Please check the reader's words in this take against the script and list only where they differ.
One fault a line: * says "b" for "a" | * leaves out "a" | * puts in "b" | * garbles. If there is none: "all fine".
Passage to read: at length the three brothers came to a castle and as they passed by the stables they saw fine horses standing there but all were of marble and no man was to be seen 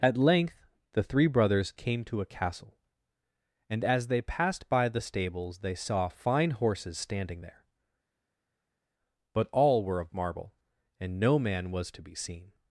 all fine